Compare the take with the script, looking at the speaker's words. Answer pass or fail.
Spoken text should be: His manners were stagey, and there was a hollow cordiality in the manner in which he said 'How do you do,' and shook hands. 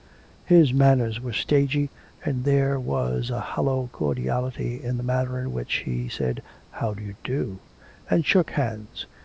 pass